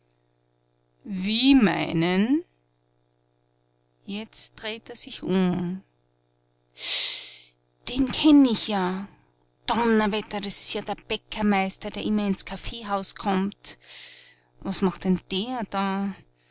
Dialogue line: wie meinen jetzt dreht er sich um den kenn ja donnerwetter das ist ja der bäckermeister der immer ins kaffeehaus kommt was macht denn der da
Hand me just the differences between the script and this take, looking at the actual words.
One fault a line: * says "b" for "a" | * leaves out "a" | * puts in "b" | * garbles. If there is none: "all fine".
* puts in "ich"